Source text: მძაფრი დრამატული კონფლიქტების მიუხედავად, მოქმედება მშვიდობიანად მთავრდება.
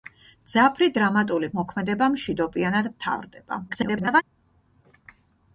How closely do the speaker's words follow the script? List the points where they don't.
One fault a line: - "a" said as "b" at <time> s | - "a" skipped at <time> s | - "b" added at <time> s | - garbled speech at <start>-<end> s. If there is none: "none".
- "კონფლიქტების მიუხედავად" skipped at 1.5 s
- garbled speech at 3.7-4.2 s